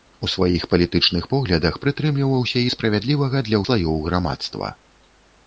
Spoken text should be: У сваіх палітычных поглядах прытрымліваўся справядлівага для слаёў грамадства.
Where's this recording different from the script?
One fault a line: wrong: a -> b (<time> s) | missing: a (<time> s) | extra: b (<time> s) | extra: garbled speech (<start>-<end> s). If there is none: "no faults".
no faults